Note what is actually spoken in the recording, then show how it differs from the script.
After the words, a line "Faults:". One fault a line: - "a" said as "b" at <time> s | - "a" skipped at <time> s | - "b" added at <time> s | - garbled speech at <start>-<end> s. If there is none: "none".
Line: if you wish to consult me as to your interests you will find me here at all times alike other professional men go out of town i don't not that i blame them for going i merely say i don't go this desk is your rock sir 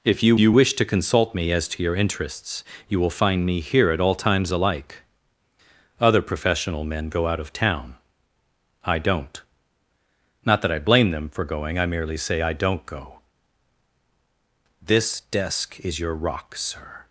if you you wish to consult me as to your interests you will find me here at all times alike other professional men go out of town i don't not that i blame them for going i merely say i don't go this desk is your rock sir
Faults:
- "you" added at 0.4 s